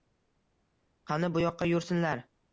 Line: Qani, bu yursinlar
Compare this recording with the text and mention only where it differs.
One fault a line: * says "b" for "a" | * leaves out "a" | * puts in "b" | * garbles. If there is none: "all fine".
* puts in "yoqqa"